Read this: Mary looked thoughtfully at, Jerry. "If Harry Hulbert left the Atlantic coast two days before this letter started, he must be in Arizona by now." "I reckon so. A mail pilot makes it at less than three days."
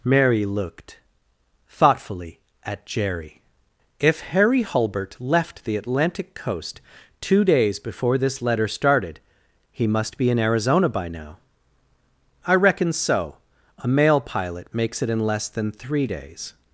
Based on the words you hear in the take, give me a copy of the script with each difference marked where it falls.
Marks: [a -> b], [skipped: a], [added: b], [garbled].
Mary looked thoughtfully at, Jerry. "If Harry Hulbert left the Atlantic coast two days before this letter started, he must be in Arizona by now." "I reckon so. A mail pilot makes it [at -> in] less than three days."